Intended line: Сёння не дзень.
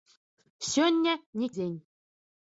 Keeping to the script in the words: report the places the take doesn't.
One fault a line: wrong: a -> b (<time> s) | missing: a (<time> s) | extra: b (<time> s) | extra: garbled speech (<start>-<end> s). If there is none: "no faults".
no faults